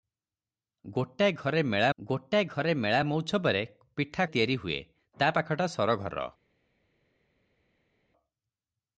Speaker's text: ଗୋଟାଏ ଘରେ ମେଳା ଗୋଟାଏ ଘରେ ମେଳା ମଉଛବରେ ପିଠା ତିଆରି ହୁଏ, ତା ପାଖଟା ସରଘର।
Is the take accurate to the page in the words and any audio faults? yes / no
yes